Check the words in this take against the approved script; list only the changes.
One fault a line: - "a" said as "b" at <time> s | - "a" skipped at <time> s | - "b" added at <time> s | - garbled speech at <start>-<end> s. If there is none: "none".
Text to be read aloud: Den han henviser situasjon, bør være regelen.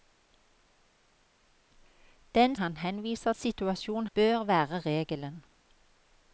none